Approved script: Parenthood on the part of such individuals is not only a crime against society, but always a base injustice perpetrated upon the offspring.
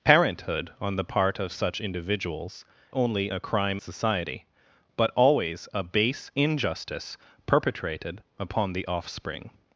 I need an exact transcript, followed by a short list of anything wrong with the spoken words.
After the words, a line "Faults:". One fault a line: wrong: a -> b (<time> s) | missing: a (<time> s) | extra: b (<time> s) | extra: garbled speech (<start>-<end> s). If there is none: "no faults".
Parenthood on the part of such individuals only a crime society, but always a base injustice perpetrated upon the offspring.
Faults:
missing: is not (2.6 s)
missing: against (3.8 s)